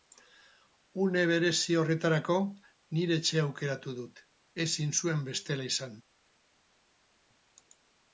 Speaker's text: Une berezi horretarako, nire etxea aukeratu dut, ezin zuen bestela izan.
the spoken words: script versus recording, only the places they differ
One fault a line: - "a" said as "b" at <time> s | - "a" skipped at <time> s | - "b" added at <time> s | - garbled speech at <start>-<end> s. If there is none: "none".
none